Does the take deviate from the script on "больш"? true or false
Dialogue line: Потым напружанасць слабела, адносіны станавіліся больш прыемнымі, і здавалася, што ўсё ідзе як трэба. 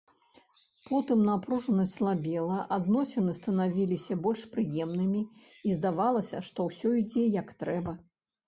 false